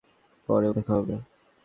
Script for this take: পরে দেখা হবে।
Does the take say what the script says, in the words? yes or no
yes